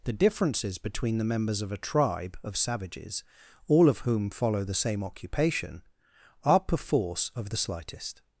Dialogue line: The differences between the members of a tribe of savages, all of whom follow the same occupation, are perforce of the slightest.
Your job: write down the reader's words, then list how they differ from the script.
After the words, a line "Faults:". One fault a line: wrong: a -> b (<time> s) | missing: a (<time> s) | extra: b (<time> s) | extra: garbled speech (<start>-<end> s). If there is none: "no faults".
The differences between the members of a tribe of savages, all of whom follow the same occupation, are perforce of the slightest.
Faults:
no faults